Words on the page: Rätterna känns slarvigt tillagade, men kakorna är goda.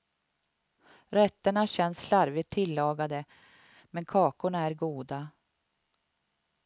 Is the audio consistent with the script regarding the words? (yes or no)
yes